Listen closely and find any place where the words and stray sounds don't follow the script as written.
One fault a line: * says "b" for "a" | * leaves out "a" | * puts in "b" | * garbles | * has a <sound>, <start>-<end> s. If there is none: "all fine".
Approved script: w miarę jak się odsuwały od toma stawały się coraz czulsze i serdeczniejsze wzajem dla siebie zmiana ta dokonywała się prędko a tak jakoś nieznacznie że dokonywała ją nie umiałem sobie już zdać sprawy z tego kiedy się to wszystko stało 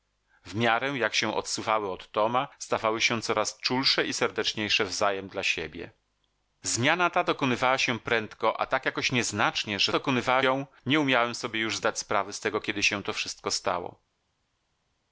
all fine